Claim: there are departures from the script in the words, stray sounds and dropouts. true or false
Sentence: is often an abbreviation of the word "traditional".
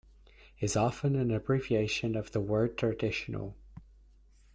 false